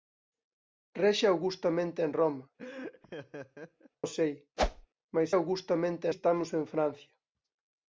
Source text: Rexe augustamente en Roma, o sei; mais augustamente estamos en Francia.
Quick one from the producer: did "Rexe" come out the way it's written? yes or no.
yes